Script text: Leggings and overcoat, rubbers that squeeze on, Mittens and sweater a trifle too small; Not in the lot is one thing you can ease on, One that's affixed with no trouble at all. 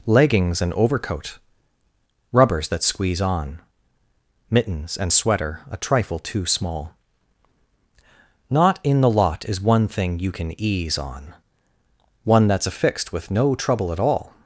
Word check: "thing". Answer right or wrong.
right